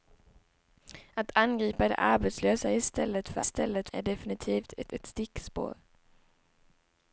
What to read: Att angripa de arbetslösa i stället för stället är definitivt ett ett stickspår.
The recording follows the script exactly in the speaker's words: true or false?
true